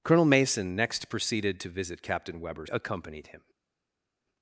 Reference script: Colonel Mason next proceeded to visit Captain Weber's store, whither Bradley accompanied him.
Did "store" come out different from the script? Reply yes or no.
yes